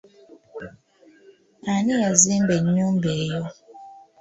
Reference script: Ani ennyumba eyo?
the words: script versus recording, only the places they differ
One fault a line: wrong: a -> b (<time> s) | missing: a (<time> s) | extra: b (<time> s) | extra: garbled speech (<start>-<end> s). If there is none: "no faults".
extra: yazimba (2.0 s)